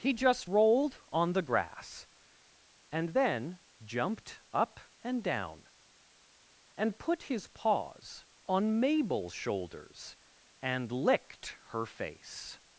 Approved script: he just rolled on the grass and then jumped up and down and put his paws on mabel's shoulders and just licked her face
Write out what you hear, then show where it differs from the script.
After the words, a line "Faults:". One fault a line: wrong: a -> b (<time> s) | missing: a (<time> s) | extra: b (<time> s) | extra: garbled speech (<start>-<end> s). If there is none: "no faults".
he just rolled on the grass and then jumped up and down and put his paws on mabel's shoulders and licked her face
Faults:
missing: just (10.9 s)